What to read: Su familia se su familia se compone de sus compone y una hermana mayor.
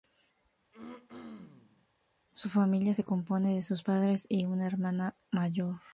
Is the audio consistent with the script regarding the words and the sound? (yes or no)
no